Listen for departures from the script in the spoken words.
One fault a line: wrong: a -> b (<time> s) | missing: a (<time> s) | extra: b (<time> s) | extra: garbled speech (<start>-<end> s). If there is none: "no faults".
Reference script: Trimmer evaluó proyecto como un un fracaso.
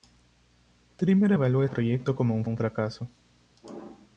no faults